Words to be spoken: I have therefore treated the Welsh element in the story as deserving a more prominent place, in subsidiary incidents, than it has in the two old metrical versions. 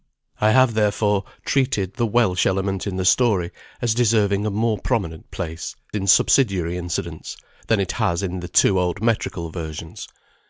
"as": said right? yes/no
yes